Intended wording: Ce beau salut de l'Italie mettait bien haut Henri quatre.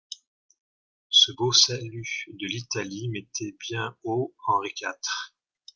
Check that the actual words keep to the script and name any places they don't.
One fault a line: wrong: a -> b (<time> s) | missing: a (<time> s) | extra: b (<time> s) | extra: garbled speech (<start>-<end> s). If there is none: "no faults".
no faults